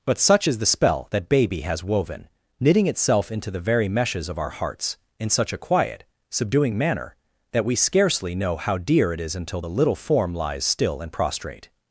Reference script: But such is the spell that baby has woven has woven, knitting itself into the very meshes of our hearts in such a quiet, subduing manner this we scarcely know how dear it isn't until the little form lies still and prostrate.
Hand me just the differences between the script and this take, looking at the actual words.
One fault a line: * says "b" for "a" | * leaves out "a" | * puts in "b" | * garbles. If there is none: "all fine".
* leaves out "has woven"
* says "that" for "this"
* says "is" for "isn't"